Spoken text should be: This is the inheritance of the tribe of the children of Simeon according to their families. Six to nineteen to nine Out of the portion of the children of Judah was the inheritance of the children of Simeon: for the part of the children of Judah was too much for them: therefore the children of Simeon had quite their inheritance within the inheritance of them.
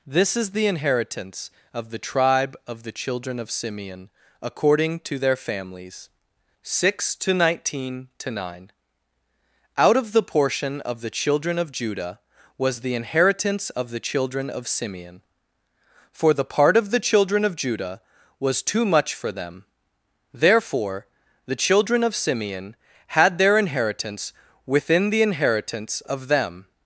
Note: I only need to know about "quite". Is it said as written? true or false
false